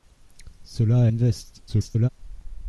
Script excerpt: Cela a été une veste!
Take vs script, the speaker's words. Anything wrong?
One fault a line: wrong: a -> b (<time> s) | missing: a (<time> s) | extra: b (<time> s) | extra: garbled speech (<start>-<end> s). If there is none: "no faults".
missing: été (1.1 s)
extra: garbled speech (1.7-2.1 s)